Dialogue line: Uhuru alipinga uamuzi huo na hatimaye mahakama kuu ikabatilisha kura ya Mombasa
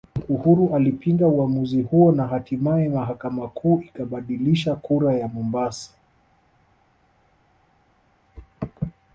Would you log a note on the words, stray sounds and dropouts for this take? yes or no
no